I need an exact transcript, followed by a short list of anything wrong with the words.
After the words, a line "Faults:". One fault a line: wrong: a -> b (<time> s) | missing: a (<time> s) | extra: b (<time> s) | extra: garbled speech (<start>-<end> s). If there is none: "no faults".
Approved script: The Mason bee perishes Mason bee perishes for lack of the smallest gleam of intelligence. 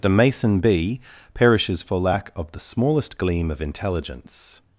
The Mason bee perishes for lack of the smallest gleam of intelligence.
Faults:
missing: Mason bee perishes (1.8 s)